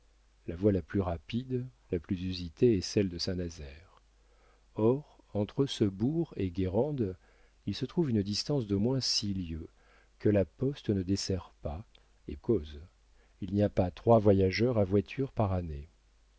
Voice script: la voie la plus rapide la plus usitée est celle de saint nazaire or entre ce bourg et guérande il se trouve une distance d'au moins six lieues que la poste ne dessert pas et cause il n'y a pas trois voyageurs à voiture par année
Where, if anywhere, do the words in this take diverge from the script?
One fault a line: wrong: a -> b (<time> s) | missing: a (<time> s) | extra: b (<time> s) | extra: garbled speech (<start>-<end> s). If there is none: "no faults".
no faults